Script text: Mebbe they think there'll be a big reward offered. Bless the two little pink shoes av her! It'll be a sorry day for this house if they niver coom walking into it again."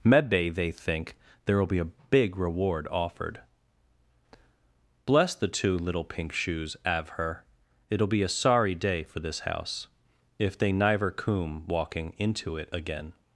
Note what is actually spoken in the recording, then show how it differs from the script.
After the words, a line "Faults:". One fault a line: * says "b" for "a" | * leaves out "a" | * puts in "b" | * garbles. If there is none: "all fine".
Mebbe they think there'll be a big reward offered. Bless the two little pink shoes av her! It'll be a sorry day for this house if they niver coom walking into it again."
Faults:
all fine